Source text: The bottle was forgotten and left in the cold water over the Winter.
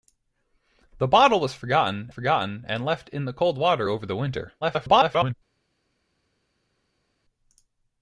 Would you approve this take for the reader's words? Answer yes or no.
no